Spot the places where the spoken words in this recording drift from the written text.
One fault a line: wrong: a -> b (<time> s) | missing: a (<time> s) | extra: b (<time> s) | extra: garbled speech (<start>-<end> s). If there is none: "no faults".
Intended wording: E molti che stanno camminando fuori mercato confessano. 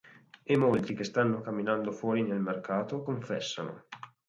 extra: nel (2.2 s)